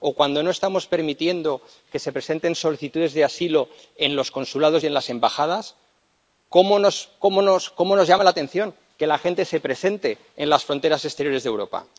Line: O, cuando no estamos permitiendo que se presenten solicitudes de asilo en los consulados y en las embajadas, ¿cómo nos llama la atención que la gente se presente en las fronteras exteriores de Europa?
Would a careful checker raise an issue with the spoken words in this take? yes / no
no